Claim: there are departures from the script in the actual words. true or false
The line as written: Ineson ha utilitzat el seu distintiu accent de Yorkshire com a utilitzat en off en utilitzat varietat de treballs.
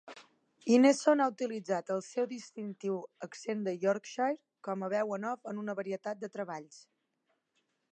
true